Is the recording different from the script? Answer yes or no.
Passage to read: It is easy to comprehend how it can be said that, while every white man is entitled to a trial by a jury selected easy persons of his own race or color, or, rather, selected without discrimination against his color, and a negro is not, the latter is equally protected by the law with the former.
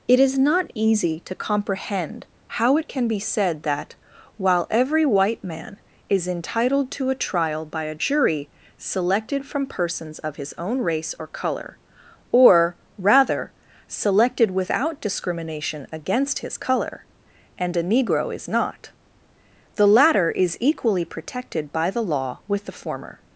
yes